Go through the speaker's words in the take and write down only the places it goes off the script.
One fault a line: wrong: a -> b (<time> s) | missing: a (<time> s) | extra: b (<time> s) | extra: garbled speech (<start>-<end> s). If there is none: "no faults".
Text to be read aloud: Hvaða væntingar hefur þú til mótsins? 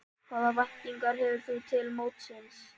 no faults